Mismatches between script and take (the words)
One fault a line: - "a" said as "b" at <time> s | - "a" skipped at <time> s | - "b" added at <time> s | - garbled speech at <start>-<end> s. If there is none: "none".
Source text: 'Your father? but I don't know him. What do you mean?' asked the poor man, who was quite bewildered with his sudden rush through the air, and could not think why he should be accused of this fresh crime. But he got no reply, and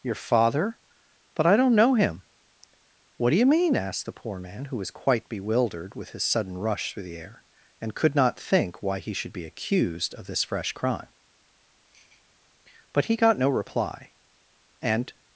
none